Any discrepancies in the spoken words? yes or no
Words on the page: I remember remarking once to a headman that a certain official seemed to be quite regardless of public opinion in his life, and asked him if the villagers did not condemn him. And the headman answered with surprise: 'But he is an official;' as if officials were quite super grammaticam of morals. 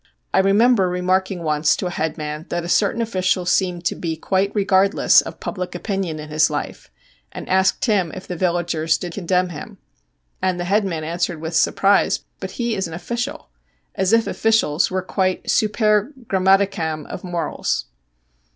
yes